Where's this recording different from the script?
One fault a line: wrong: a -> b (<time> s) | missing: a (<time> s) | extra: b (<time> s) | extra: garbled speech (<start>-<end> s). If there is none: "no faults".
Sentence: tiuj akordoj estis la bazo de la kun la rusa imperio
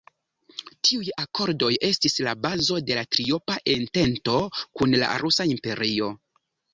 extra: triopa entento (3.2 s)